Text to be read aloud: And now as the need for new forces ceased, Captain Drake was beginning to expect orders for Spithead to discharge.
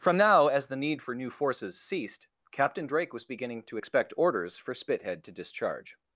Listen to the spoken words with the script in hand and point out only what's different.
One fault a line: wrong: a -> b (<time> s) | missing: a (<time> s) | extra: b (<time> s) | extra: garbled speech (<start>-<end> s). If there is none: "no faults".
wrong: And -> From (0.0 s)